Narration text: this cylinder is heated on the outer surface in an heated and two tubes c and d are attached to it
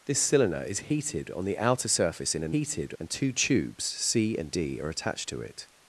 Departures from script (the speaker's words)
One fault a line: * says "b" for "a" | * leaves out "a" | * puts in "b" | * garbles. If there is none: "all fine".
all fine